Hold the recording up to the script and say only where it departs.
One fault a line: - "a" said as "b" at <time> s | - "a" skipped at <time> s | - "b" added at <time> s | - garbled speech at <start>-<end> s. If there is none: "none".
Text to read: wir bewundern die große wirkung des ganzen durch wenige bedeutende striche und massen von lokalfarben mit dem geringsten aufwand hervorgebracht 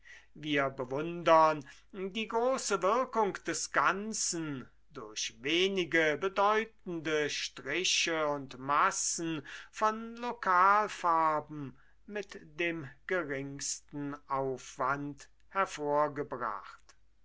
none